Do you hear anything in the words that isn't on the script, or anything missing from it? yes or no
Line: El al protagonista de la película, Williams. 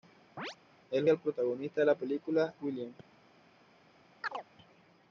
no